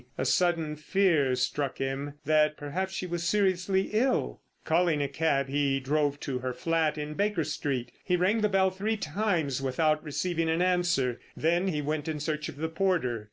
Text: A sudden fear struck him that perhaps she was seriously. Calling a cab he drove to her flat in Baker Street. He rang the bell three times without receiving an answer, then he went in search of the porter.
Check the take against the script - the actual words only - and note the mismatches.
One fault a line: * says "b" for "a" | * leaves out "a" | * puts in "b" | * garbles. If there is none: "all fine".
* puts in "ill"